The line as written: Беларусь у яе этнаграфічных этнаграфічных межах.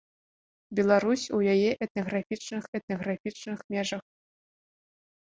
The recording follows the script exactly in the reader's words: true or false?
true